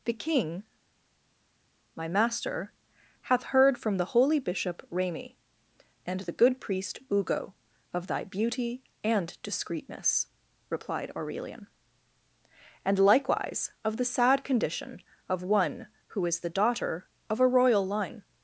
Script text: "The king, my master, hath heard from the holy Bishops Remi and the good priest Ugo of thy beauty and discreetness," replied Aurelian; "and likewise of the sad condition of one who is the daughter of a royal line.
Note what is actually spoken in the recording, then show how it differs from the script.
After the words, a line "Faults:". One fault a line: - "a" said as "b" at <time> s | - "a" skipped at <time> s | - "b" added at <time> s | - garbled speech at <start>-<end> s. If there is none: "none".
"The king, my master, hath heard from the holy Bishop Remi and the good priest Ugo of thy beauty and discreetness," replied Aurelian; "and likewise of the sad condition of one who is the daughter of a royal line.
Faults:
- "Bishops" said as "Bishop" at 4.4 s